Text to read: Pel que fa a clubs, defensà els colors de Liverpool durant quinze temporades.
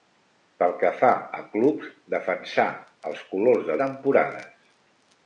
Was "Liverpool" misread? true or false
true